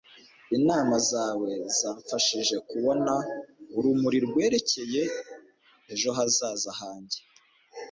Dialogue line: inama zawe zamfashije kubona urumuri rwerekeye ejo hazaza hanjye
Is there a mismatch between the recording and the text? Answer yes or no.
no